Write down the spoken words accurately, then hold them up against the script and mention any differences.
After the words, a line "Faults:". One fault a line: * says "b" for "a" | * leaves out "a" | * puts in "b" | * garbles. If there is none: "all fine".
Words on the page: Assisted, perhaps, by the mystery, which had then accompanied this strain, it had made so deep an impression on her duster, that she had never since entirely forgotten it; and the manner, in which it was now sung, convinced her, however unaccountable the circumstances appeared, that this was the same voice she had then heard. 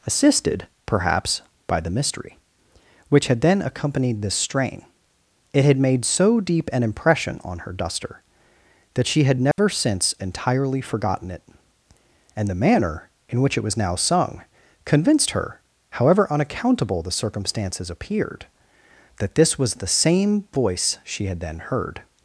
Assisted, perhaps, by the mystery, which had then accompanied this strain, it had made so deep an impression on her duster, that she had never since entirely forgotten it; and the manner, in which it was now sung, convinced her, however unaccountable the circumstances appeared, that this was the same voice she had then heard.
Faults:
all fine